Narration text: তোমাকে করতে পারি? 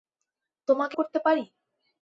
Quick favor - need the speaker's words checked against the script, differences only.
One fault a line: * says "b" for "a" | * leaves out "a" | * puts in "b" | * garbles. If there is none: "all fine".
all fine